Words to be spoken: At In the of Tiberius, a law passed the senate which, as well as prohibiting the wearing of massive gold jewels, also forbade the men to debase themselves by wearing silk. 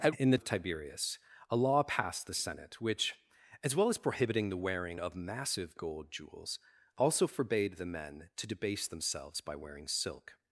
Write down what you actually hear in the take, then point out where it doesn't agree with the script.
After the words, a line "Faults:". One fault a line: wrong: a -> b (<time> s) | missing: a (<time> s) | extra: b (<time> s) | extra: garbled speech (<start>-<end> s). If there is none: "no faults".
At In the of Tiberius, a law passed the senate which, as well as prohibiting the wearing of massive gold jewels, also forbade the men to debase themselves by wearing silk.
Faults:
no faults